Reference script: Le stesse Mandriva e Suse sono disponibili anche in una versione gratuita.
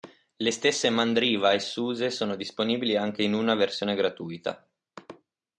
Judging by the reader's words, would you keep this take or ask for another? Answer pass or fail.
pass